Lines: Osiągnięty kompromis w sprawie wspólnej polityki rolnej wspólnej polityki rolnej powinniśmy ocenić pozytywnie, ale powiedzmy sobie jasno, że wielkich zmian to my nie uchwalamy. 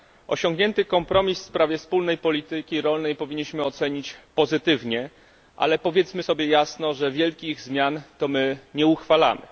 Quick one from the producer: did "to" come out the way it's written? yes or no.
yes